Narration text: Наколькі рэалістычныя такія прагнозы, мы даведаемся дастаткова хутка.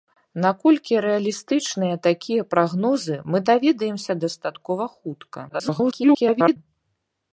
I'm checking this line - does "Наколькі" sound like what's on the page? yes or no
yes